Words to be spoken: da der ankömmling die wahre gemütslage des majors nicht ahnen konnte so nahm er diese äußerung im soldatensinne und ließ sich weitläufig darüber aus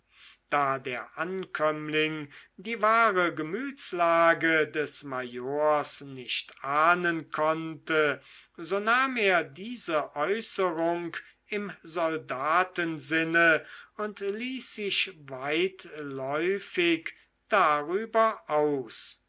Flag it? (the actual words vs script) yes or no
no